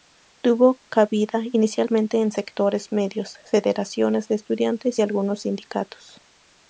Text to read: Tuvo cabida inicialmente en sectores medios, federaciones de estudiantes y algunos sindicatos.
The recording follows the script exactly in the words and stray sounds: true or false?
true